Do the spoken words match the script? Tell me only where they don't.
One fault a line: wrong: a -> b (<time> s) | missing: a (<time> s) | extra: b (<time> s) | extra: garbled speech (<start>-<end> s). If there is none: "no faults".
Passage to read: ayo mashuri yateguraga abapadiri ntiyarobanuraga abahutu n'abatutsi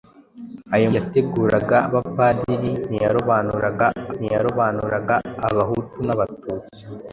missing: mashuri (0.9 s)
extra: ntiyarobanuraga (4.2 s)